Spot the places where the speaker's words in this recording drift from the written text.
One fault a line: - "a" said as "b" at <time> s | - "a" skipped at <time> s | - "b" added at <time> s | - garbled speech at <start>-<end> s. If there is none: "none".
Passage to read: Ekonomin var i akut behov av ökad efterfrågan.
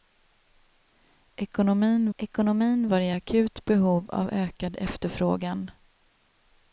- "ekonomin" added at 2.2 s